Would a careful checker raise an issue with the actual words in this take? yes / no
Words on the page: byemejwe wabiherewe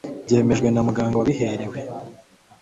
yes